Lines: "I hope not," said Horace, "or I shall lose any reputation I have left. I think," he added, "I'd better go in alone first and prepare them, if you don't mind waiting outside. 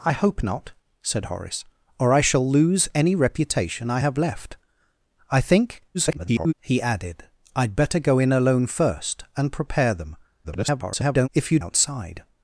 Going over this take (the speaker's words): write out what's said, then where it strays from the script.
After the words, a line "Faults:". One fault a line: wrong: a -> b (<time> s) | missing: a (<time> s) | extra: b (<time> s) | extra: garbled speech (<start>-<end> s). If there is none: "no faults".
"I hope not," said Horace, "or I shall lose any reputation I have left. I think," [garbled] he added, "I'd better go in alone first and prepare them, [garbled] if you outside.
Faults:
extra: garbled speech (5.9-6.5 s)
extra: garbled speech (10.4-11.3 s)
missing: don't mind waiting (11.6 s)